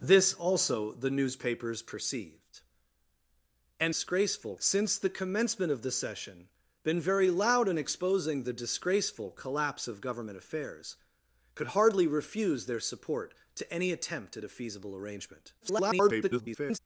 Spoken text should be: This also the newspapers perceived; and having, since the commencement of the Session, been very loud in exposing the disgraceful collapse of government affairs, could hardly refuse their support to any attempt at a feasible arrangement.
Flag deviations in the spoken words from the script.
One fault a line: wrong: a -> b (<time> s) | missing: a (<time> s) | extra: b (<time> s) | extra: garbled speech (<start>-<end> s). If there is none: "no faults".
wrong: having -> disgraceful (3.9 s)
extra: garbled speech (15.6-16.8 s)